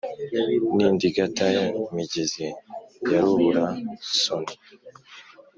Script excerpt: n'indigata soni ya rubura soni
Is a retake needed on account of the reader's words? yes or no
yes